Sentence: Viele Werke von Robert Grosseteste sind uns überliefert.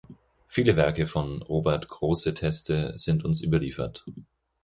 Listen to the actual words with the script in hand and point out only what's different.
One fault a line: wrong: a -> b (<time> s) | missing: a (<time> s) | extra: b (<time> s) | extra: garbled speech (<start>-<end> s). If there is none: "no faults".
no faults